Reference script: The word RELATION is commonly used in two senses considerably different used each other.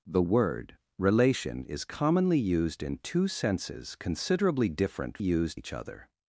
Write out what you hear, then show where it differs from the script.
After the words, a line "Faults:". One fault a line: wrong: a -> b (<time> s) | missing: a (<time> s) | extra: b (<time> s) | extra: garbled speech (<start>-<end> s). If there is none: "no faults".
The word RELATION is commonly used in two senses considerably different used each other.
Faults:
no faults